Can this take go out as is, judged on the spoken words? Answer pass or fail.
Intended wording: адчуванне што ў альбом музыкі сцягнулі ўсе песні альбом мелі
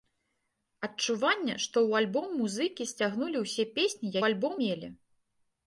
pass